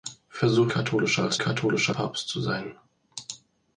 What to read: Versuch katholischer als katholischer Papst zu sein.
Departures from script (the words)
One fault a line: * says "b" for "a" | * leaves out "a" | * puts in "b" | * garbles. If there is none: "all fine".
all fine